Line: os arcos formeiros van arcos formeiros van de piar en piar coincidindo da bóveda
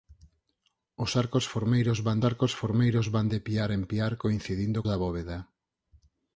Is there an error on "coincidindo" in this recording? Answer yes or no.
no